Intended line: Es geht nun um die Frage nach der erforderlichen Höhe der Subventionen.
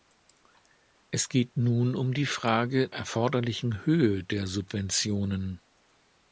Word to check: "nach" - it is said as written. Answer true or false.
false